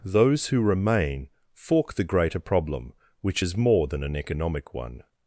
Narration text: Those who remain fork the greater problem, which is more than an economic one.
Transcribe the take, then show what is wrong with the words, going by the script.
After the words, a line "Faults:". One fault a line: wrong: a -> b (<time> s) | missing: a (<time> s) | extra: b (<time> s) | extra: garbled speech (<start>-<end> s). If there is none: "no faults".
Those who remain fork the greater problem, which is more than an economic one.
Faults:
no faults